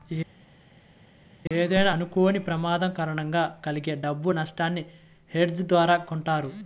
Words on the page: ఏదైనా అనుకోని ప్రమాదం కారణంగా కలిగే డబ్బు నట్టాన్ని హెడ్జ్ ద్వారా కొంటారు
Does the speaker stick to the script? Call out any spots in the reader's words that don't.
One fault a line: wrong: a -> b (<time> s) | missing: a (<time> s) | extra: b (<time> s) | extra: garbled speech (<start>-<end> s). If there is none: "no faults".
no faults